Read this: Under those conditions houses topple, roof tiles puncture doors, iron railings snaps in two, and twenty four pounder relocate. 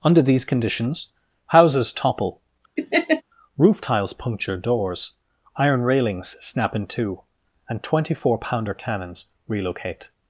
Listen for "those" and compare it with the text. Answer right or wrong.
wrong